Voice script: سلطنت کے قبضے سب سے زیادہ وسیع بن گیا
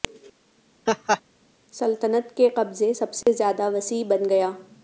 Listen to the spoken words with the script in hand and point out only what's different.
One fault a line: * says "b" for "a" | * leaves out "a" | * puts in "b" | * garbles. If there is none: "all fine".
all fine